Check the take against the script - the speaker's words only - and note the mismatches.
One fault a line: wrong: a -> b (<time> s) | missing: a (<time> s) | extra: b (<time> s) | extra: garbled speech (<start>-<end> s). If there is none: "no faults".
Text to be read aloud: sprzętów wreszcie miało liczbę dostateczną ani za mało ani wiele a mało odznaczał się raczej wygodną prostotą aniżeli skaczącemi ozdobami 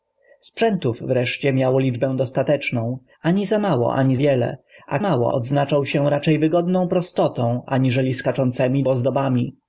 no faults